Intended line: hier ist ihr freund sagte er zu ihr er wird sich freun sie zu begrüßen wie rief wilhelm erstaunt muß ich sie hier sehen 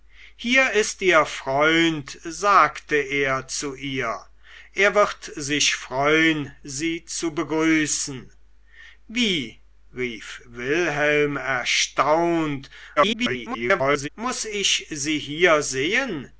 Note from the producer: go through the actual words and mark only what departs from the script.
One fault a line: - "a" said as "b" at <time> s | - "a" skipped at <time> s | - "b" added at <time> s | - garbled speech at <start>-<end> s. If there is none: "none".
- garbled speech at 13.0-14.1 s